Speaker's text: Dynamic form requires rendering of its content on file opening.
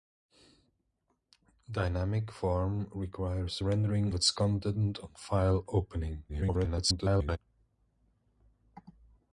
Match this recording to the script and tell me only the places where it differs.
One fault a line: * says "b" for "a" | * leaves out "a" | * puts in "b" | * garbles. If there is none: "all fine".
* leaves out "of"
* garbles